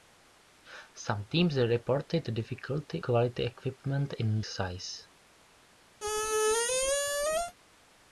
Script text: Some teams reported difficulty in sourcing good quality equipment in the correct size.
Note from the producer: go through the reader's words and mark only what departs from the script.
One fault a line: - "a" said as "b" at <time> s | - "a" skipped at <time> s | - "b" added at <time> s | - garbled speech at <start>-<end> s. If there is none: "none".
- "in sourcing good" skipped at 3.0 s
- "the correct" skipped at 4.4 s